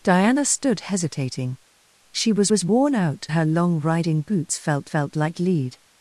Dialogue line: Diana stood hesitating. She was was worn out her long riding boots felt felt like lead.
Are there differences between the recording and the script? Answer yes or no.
no